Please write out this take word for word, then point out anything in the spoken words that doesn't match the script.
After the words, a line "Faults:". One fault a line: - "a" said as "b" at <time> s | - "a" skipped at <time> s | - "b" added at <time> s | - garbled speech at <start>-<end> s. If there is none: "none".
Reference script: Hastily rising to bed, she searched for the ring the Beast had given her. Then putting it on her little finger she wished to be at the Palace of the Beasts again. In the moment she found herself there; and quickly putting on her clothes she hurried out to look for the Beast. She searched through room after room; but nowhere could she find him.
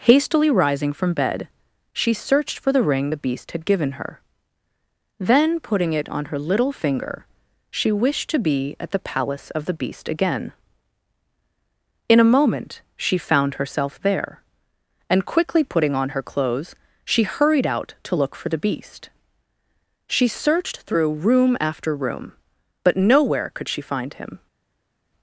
Hastily rising from bed, she searched for the ring the Beast had given her. Then putting it on her little finger she wished to be at the Palace of the Beast again. In a moment she found herself there; and quickly putting on her clothes she hurried out to look for the Beast. She searched through room after room; but nowhere could she find him.
Faults:
- "to" said as "from" at 0.9 s
- "Beasts" said as "Beast" at 9.7 s
- "the" said as "a" at 12.2 s